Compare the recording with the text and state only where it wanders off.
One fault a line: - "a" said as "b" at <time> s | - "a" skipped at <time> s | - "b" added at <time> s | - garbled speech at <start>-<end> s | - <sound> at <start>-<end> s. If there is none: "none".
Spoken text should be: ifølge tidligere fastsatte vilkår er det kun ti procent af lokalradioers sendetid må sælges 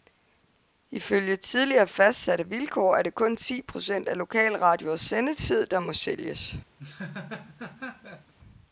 - "der" added at 5.7 s
- laugh at 6.8-8.3 s